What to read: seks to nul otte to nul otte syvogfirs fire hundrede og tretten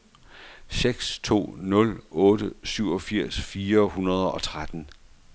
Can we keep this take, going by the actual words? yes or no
no